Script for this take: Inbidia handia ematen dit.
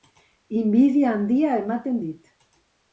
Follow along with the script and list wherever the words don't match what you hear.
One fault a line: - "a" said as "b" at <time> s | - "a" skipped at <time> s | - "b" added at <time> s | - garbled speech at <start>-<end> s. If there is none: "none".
none